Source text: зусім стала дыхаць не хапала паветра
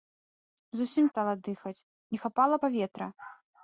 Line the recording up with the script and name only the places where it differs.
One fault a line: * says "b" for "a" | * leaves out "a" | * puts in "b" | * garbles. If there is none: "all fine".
all fine